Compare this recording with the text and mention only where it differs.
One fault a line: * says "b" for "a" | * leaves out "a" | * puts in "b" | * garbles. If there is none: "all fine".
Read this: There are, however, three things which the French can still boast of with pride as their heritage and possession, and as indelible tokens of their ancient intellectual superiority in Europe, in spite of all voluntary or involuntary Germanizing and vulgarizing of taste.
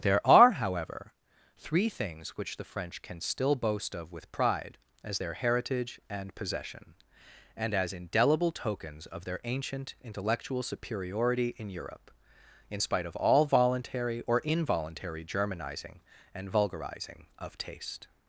all fine